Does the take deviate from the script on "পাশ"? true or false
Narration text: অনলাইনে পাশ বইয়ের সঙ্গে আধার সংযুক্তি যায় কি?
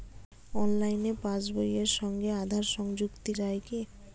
false